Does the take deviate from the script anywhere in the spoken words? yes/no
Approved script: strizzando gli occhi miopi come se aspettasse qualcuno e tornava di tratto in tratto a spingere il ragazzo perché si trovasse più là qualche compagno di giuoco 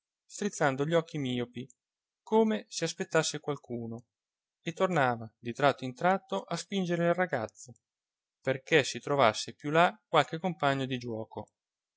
no